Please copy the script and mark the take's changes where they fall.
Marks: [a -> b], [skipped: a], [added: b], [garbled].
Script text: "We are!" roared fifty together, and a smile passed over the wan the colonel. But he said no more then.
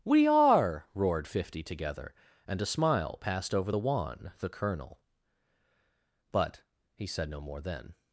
"We are!" roared fifty together, and a smile passed over the wan the colonel. But he said no more then.